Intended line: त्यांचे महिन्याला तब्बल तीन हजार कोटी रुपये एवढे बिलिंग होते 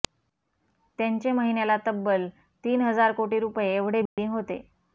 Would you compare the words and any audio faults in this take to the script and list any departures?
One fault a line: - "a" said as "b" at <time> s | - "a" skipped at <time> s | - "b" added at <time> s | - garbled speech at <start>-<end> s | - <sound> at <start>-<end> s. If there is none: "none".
- dropout at 4.1-4.2 s